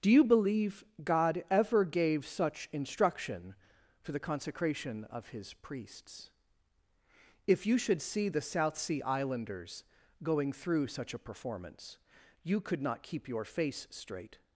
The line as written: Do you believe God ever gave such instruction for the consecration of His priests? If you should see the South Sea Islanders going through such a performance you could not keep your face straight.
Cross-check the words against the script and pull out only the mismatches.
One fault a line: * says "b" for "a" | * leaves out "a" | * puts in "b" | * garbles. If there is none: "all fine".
all fine